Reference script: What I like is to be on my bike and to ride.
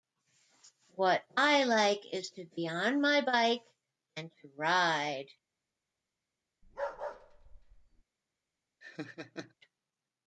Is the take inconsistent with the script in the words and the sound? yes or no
yes